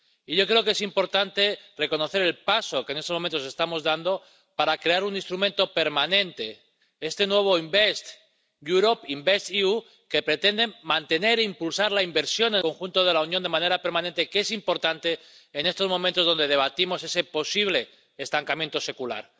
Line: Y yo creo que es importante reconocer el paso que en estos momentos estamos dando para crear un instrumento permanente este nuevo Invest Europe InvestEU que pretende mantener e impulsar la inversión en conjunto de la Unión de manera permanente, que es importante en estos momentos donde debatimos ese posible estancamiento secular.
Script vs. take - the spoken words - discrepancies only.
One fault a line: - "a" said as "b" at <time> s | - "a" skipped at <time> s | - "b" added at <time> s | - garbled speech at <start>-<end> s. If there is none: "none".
none